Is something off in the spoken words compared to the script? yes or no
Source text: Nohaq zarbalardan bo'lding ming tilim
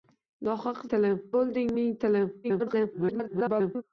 yes